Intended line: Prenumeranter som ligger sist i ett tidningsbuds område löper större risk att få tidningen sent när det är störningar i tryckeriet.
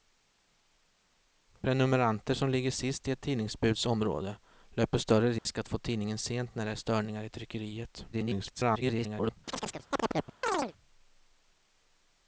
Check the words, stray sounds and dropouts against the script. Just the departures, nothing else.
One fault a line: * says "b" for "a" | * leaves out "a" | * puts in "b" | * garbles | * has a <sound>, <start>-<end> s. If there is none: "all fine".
* has a dropout, 5.4-5.5 s
* garbles
* has a chirp, 9.5-10.7 s